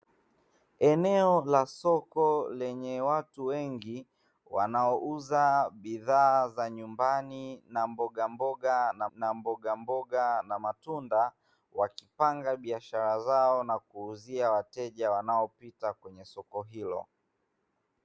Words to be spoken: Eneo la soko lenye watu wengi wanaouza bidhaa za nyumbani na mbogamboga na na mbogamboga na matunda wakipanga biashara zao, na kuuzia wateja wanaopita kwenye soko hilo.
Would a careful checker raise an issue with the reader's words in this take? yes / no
no